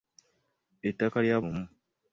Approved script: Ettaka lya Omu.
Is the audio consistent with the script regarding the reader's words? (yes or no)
yes